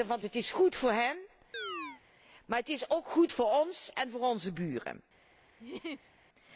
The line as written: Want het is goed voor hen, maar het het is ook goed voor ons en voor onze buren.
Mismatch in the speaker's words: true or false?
true